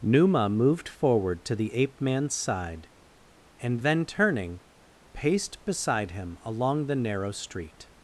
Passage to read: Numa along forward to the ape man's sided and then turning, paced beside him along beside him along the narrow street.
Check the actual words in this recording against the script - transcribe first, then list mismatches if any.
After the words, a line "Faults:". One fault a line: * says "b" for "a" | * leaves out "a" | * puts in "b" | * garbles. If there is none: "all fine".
Numa moved forward to the ape man's side and then turning, paced beside him along the narrow street.
Faults:
* says "moved" for "along"
* says "side" for "sided"
* leaves out "beside him along"